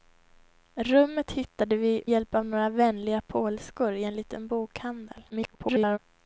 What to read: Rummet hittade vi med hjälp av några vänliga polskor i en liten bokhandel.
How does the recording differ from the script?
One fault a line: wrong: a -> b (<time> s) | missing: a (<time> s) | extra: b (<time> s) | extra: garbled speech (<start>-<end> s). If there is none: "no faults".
missing: med (2.0 s)
extra: garbled speech (5.3-6.0 s)